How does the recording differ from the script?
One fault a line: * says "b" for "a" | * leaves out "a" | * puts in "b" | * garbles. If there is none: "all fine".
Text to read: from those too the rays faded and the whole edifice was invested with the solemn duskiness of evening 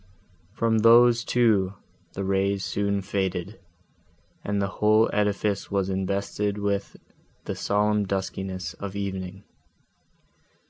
* puts in "soon"